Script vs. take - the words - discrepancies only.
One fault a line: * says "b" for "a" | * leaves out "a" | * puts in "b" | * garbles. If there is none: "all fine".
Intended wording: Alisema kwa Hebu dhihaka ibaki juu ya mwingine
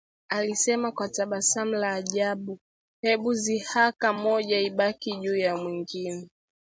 * puts in "tabasamu la ajabu"
* puts in "moja"